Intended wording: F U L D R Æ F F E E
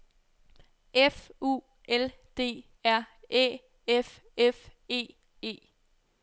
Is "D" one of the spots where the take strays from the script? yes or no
no